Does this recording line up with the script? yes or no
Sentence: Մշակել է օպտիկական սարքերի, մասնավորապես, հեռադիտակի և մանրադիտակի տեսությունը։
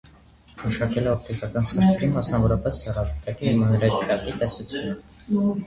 yes